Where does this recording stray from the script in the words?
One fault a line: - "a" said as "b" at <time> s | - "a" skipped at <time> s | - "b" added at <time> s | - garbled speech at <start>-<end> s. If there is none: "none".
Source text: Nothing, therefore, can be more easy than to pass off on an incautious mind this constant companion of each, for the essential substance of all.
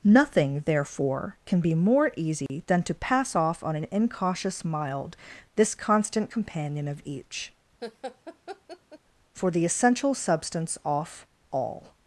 - "mind" said as "mild" at 4.7 s
- "of" said as "off" at 10.9 s